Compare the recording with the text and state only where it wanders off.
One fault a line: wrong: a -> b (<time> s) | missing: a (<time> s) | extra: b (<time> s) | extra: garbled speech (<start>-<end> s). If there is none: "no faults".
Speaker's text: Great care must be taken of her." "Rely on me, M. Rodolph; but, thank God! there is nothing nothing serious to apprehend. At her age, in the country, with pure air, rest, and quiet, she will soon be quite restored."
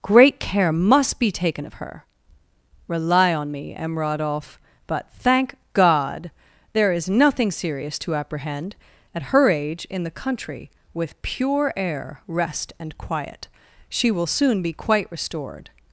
missing: nothing (7.5 s)